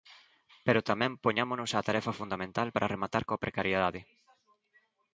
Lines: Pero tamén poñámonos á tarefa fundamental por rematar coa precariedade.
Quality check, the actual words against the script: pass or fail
fail